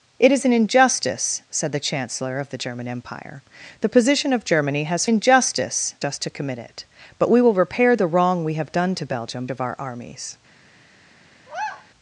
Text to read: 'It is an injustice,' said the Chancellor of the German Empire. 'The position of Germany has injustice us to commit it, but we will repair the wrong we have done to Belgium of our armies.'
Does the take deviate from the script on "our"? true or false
false